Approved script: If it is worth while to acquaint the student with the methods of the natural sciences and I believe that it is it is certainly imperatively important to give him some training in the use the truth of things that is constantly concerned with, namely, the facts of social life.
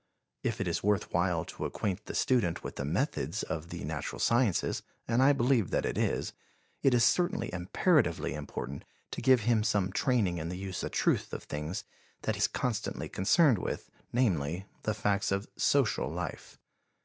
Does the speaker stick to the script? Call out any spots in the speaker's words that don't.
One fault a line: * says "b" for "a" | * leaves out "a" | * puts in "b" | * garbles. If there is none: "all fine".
all fine